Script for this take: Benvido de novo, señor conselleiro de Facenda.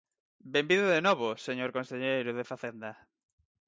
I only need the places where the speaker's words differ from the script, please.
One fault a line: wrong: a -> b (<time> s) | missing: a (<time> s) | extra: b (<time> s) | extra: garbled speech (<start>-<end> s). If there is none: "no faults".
no faults